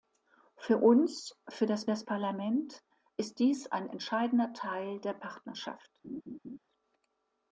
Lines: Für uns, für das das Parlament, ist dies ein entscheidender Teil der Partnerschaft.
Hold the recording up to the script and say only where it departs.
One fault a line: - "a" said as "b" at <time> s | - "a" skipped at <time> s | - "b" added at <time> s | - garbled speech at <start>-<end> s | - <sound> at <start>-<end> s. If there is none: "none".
- laugh at 6.0-6.6 s